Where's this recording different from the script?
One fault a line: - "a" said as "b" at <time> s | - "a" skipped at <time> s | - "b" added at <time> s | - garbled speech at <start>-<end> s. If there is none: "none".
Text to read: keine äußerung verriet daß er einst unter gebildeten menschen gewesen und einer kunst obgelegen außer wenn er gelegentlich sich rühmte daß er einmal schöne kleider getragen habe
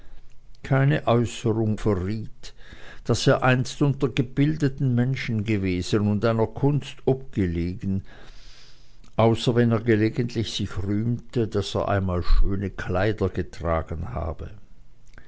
none